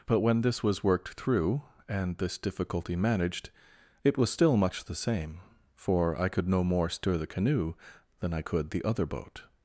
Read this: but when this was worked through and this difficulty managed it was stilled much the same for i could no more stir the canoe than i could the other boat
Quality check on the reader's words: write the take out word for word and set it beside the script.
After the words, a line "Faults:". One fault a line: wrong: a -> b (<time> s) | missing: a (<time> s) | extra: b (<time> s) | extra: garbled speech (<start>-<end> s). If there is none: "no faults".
but when this was worked through and this difficulty managed it was still much the same for i could no more stir the canoe than i could the other boat
Faults:
wrong: stilled -> still (4.3 s)